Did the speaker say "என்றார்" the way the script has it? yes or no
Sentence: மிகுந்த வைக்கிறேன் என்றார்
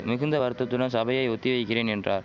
yes